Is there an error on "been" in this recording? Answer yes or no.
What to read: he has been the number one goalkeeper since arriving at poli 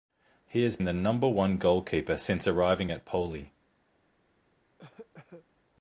yes